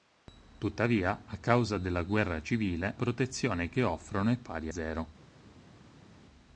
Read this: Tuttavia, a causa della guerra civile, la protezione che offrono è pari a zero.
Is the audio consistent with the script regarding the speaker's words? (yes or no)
no